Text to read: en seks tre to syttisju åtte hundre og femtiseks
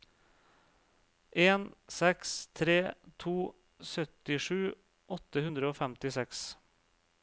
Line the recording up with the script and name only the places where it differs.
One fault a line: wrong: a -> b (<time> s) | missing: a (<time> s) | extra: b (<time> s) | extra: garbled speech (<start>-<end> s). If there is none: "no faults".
no faults